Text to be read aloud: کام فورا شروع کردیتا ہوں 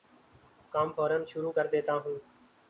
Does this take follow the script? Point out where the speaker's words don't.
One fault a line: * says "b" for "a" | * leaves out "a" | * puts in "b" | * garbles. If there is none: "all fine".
all fine